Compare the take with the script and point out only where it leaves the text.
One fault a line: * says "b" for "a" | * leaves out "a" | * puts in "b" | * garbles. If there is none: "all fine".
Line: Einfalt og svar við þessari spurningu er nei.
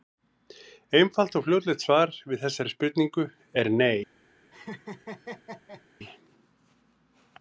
* puts in "fljótlegt"